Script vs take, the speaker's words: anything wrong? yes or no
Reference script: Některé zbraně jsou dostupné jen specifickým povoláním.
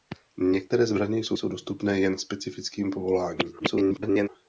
yes